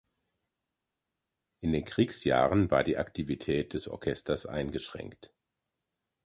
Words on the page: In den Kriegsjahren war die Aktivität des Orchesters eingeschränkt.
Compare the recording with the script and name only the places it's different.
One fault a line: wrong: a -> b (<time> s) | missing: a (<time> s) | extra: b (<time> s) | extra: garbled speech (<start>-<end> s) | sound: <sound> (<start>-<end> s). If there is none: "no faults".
no faults